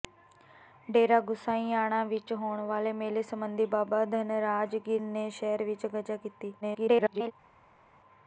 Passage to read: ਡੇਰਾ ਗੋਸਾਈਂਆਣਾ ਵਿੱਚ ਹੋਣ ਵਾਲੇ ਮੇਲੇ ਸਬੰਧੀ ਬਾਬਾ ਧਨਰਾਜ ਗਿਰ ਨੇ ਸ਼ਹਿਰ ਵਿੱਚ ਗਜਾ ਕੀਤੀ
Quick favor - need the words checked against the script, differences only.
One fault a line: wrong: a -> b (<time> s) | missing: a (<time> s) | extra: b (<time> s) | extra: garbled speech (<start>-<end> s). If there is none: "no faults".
extra: garbled speech (6.6-7.3 s)